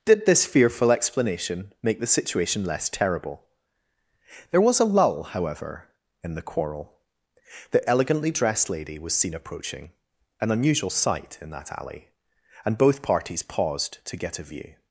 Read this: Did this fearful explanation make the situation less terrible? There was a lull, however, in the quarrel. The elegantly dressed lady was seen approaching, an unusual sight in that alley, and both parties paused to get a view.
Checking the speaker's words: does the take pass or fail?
pass